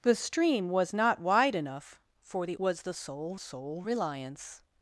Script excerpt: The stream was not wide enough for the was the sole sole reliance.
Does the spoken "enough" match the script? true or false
true